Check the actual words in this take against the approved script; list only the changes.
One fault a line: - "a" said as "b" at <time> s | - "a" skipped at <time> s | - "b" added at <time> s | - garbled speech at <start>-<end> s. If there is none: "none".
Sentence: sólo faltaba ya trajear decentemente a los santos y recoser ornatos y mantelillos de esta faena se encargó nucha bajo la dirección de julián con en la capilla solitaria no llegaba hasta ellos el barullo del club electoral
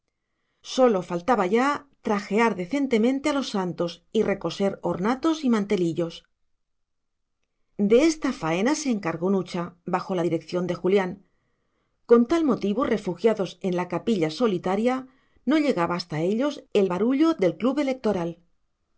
- "tal motivo refugiados" added at 12.3 s